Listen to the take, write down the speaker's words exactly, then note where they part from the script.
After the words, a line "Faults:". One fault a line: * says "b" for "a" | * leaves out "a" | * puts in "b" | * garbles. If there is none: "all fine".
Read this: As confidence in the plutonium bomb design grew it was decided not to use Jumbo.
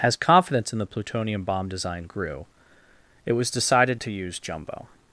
As confidence in the plutonium bomb design grew it was decided to use Jumbo.
Faults:
* leaves out "not"